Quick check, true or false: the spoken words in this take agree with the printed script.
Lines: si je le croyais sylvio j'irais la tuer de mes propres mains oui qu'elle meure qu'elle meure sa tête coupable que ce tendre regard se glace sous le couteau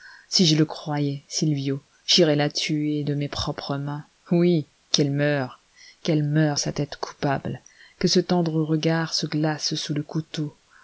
true